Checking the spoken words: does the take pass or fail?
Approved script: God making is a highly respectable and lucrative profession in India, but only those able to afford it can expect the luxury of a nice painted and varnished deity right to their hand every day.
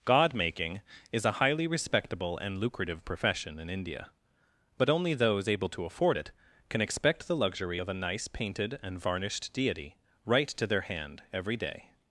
pass